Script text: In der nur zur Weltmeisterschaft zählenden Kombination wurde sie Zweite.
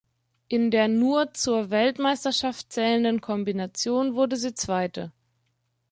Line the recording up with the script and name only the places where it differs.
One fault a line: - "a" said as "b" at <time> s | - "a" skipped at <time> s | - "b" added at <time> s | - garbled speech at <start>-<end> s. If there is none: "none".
none